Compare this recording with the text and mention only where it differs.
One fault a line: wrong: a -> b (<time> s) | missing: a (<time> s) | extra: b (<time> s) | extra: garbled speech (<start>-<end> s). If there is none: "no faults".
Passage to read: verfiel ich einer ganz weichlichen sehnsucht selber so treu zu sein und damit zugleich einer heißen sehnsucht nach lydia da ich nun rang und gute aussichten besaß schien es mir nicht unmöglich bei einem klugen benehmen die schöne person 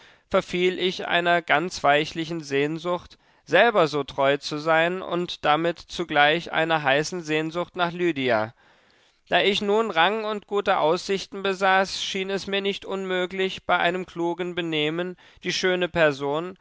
no faults